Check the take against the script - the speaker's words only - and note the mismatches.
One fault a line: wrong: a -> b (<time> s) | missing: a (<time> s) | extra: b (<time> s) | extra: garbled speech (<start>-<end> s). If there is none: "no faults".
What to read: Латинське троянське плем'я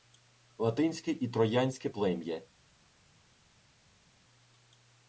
extra: і (1.1 s)